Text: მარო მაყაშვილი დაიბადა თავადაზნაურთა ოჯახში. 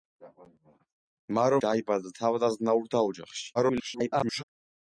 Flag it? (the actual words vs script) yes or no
yes